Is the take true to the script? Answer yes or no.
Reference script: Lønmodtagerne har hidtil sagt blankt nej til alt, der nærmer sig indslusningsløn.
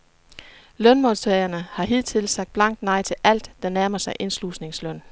yes